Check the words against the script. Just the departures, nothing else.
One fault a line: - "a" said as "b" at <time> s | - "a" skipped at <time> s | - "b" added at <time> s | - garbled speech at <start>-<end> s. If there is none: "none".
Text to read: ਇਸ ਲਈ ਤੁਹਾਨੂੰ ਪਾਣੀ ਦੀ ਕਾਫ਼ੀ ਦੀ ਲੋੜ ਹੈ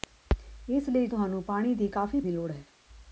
none